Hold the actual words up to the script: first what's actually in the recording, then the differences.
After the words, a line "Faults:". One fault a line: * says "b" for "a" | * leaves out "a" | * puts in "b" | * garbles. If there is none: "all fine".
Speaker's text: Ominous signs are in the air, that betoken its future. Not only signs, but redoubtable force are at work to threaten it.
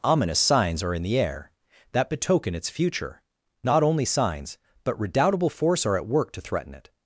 Ominous signs are in the air, that betoken its future. Not only signs, but redoubtable force are at work to threaten it.
Faults:
all fine